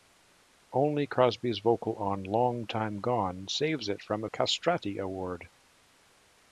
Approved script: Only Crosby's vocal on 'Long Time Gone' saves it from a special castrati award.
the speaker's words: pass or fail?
fail